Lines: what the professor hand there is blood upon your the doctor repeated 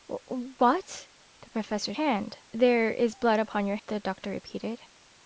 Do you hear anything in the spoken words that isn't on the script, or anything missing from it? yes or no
no